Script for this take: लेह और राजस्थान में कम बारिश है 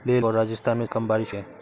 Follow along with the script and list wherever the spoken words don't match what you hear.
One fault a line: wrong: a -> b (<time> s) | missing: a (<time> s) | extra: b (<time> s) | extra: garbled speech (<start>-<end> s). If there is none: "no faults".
no faults